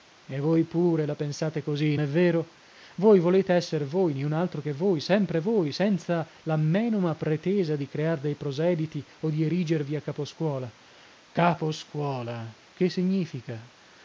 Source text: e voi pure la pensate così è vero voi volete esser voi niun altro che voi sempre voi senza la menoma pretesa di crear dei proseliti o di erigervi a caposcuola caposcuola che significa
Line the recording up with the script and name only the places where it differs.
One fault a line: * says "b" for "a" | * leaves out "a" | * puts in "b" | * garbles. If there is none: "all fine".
all fine